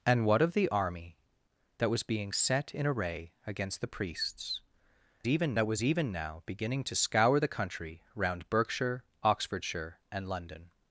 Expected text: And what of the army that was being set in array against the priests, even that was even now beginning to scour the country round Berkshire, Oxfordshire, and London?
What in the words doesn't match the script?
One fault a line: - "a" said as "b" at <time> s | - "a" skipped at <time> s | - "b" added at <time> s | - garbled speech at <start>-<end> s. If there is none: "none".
none